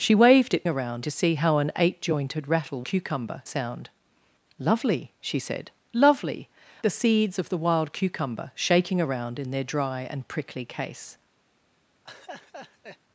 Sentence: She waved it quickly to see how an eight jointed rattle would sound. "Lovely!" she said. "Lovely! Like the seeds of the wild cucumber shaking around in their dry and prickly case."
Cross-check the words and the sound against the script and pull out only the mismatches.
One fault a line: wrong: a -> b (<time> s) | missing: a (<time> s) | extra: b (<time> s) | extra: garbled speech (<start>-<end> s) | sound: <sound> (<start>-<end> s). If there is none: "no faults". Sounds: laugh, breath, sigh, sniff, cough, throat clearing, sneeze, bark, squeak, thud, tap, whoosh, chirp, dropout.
wrong: quickly -> around (0.7 s)
wrong: would -> cucumber (2.8 s)
missing: Like (6.5 s)
sound: laugh (12.0-13.0 s)